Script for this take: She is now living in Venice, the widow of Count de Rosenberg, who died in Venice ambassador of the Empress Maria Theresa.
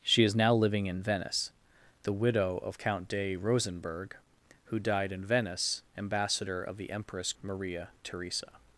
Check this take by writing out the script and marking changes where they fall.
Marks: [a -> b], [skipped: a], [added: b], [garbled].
She is now living in Venice, the widow of Count de Rosenberg, who died in Venice ambassador of the Empress Maria Theresa.